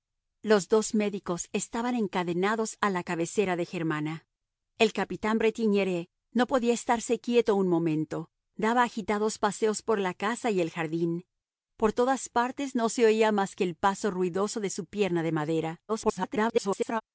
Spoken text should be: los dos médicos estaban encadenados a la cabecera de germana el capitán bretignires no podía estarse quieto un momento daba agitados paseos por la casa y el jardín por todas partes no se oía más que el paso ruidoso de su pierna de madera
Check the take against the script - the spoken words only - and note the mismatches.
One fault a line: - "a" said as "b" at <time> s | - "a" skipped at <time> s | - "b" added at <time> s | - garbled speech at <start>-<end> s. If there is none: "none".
- garbled speech at 15.9-17.0 s